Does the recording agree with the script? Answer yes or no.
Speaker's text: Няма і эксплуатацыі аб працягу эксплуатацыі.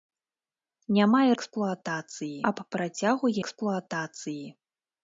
yes